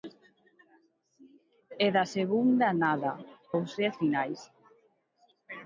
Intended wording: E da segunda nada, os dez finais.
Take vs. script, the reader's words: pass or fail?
pass